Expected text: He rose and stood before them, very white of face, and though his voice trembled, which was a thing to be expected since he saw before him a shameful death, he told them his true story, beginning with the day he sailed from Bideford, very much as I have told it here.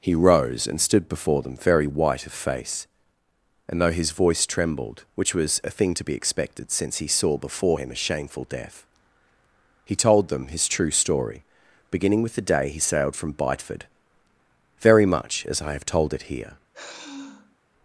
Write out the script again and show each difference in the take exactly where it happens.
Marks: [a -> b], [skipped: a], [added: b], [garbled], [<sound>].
He rose and stood before them, very white of face, and though his voice trembled, which was a thing to be expected since he saw before him a shameful death, he told them his true story, beginning with the day he sailed from Bideford, very much as I have told it here. [sigh]